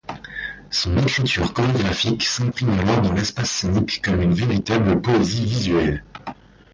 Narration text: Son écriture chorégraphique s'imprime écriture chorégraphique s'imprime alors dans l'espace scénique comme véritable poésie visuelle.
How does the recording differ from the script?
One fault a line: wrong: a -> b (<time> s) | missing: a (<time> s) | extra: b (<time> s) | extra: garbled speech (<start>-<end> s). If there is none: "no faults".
missing: écriture chorégraphique s'imprime (2.7 s)
extra: une (4.2 s)